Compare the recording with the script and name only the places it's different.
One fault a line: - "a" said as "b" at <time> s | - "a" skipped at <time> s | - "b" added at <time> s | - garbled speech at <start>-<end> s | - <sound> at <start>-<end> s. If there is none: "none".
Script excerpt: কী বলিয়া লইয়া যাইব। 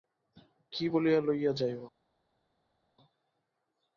none